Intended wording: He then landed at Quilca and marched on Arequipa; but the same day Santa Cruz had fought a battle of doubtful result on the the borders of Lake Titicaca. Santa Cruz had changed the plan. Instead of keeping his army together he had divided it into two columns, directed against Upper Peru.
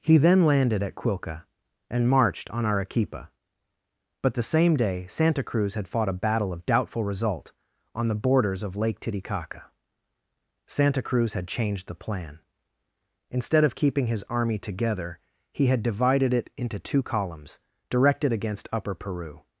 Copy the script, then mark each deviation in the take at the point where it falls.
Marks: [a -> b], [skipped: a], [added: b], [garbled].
He then landed at Quilca and marched on Arequipa; but the same day Santa Cruz had fought a battle of doubtful result on the [skipped: the] borders of Lake Titicaca. Santa Cruz had changed the plan. Instead of keeping his army together he had divided it into two columns, directed against Upper Peru.